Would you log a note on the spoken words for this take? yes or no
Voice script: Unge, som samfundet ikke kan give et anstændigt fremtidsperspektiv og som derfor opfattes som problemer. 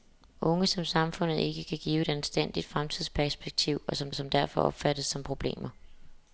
yes